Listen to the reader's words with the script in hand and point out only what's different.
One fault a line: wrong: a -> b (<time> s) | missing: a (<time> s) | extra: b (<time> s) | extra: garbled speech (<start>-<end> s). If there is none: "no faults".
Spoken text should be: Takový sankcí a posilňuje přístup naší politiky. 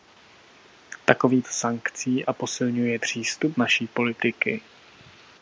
no faults